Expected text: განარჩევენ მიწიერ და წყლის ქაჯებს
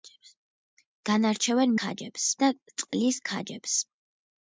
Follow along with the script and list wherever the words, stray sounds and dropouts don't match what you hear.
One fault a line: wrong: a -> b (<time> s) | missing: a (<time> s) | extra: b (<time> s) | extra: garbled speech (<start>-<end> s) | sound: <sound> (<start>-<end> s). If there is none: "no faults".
wrong: მიწიერ -> ქაჯებს (1.8 s)
sound: dropout (2.9-2.9 s)